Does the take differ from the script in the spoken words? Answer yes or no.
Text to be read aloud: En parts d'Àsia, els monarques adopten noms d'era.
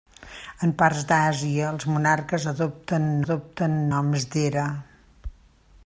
yes